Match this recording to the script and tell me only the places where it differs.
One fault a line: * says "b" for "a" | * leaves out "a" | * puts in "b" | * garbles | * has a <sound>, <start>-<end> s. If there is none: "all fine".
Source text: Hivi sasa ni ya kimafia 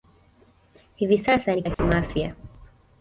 * has a dropout, 1.7-1.8 s